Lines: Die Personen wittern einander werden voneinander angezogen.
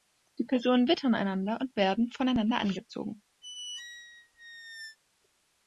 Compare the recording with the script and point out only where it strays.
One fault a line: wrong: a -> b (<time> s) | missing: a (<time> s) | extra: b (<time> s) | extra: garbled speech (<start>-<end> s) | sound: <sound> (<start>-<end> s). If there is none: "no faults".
extra: und (1.6 s)
sound: squeak (3.4-5.0 s)